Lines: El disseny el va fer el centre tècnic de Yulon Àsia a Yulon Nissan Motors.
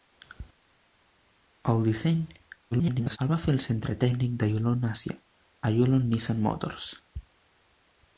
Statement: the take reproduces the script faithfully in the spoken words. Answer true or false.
false